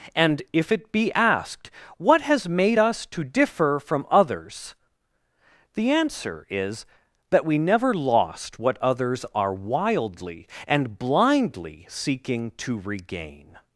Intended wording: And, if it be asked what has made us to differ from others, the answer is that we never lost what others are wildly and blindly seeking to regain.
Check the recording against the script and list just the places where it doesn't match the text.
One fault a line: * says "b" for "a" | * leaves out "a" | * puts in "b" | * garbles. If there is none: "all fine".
all fine